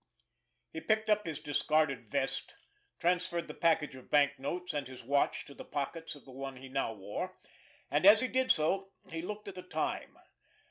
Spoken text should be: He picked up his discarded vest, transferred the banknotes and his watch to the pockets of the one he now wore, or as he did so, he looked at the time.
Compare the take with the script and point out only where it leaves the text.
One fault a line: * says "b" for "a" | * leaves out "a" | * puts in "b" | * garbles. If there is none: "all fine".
* puts in "package of"
* says "and" for "or"